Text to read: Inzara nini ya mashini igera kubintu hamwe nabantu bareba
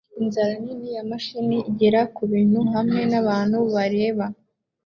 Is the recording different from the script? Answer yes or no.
no